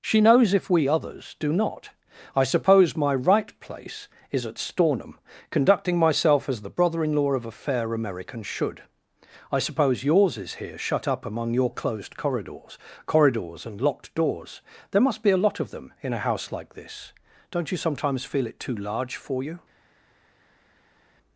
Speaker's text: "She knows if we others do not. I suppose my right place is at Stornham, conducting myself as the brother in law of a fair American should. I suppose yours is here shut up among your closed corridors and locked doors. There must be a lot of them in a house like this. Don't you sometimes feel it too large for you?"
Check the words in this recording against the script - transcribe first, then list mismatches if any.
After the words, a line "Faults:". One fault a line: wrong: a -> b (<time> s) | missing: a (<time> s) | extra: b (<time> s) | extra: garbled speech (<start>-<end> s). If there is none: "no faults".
"She knows if we others do not. I suppose my right place is at Stornham, conducting myself as the brother in law of a fair American should. I suppose yours is here shut up among your closed corridors corridors and locked doors. There must be a lot of them in a house like this. Don't you sometimes feel it too large for you?"
Faults:
extra: corridors (13.1 s)